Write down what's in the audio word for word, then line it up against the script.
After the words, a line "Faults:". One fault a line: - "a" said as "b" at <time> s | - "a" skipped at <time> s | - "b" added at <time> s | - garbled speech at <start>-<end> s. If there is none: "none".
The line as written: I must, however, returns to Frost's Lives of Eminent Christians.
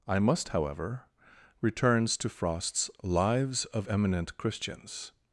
I must, however, returns to Frost's Lives of Eminent Christians.
Faults:
none